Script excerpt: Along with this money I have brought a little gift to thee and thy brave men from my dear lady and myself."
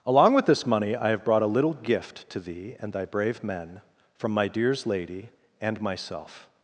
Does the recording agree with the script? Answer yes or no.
no